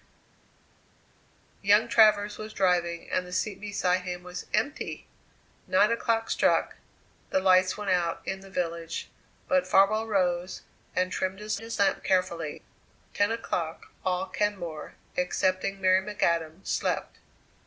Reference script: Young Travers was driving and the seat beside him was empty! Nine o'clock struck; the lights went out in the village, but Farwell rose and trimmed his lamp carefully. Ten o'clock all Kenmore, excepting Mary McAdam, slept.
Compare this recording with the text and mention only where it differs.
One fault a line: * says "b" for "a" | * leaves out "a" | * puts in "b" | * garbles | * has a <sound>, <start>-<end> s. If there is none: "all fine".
* puts in "his"